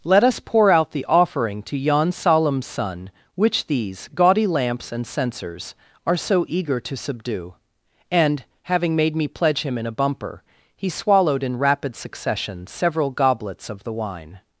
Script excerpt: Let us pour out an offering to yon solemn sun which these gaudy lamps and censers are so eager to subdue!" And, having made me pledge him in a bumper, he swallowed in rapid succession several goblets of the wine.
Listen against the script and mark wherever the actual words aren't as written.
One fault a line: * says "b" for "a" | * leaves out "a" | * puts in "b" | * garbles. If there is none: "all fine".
* says "the" for "an"